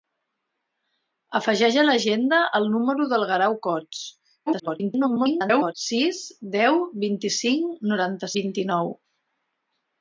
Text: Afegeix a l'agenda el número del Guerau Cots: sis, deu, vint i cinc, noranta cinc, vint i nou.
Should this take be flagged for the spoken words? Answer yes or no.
yes